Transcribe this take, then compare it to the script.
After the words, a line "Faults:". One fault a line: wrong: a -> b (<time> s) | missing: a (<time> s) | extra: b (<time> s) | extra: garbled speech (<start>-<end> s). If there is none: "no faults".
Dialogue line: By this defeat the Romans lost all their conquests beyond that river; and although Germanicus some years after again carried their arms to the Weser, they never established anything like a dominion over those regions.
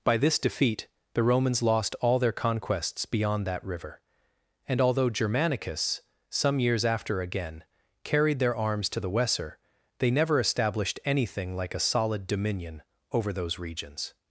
By this defeat the Romans lost all their conquests beyond that river; and although Germanicus some years after again carried their arms to the Weser, they never established anything like a solid dominion over those regions.
Faults:
extra: solid (11.8 s)